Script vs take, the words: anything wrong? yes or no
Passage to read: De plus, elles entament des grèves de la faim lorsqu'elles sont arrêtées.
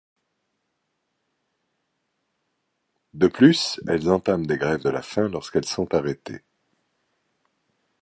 no